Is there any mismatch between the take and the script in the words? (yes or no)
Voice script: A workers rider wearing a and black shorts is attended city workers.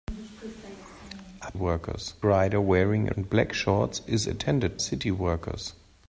no